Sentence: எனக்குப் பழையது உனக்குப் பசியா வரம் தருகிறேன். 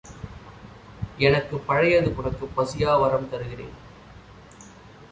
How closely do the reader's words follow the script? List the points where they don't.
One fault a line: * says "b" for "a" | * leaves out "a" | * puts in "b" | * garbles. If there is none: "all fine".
all fine